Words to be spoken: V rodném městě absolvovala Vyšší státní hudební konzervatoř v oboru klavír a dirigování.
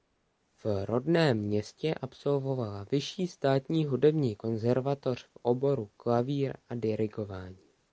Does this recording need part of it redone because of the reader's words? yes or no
no